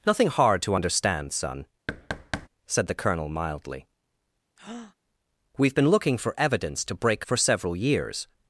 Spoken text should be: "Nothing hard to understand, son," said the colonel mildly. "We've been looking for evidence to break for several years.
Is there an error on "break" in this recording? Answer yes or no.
no